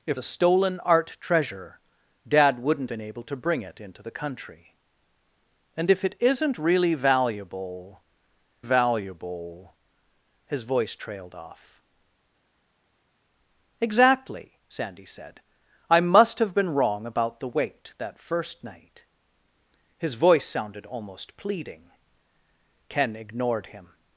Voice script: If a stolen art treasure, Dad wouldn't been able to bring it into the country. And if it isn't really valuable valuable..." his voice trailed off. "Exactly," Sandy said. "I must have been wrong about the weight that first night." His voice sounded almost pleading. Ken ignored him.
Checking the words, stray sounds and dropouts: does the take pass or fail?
pass